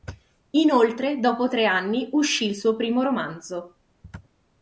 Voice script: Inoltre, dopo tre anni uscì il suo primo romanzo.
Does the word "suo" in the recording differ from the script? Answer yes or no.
no